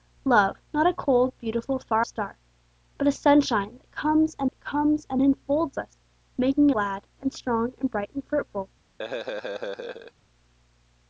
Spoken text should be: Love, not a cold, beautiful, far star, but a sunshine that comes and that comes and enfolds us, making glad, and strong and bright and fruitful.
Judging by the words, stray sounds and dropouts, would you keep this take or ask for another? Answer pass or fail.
fail